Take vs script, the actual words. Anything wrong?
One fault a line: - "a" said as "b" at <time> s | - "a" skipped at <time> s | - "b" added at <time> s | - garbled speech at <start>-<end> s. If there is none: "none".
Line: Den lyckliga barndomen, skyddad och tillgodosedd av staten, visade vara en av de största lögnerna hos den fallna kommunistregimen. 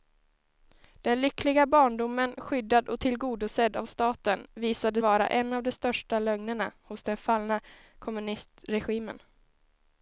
none